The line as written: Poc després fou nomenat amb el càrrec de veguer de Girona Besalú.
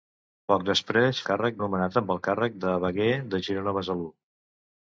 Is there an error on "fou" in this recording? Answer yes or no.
yes